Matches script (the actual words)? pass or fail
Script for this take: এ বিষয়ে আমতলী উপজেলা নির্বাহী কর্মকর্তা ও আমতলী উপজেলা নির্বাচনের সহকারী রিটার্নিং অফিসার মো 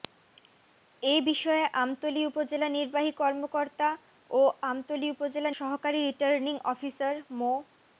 fail